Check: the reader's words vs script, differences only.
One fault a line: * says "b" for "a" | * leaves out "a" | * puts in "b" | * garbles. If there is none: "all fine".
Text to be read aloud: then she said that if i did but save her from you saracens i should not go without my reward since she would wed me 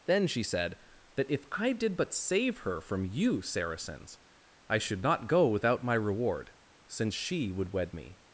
all fine